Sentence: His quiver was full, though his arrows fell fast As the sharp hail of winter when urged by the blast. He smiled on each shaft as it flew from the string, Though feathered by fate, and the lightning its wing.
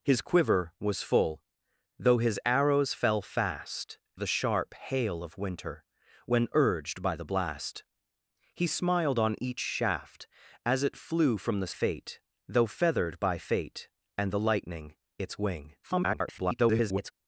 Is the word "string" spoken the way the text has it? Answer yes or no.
no